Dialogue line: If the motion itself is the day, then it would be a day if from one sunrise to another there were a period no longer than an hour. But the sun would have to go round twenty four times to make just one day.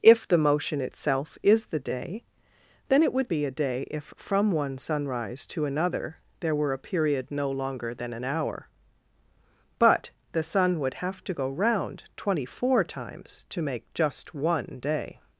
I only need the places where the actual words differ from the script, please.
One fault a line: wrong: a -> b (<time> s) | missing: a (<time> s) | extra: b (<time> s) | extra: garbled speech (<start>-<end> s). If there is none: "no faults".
no faults